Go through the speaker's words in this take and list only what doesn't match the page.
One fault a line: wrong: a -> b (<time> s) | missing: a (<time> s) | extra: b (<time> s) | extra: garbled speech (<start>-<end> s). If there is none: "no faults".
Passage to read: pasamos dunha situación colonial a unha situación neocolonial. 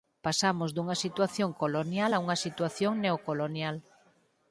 no faults